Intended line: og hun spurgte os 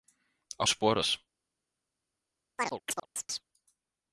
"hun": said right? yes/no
no